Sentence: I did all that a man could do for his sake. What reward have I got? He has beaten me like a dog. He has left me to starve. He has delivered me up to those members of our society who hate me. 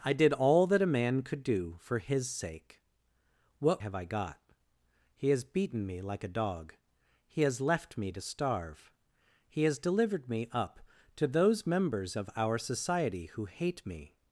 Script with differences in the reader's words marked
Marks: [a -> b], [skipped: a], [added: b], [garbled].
I did all that a man could do for his sake. What [skipped: reward] have I got? He has beaten me like a dog. He has left me to starve. He has delivered me up to those members of our society who hate me.